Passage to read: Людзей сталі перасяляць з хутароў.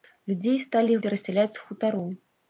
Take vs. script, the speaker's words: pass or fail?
pass